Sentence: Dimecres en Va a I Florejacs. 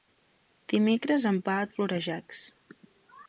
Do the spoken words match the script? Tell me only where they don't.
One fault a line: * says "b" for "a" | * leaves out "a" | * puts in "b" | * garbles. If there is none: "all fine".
all fine